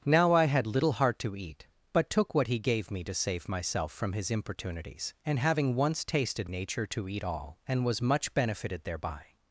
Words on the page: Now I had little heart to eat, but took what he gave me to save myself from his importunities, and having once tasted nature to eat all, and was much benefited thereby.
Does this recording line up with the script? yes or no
yes